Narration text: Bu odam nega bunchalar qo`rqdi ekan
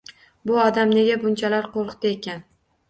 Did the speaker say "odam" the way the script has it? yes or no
yes